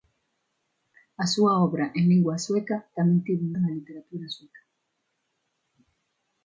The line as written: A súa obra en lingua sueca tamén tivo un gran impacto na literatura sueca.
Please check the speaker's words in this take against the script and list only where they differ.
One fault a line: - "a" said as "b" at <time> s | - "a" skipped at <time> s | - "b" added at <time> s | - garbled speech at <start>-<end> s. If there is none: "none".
- "gran impacto" skipped at 3.5 s